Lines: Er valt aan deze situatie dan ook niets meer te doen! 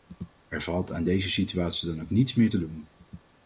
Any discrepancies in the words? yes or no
no